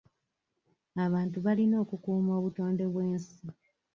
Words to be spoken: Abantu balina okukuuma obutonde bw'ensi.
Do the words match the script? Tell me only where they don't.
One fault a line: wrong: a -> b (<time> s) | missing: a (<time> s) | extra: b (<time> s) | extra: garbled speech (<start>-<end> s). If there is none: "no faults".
no faults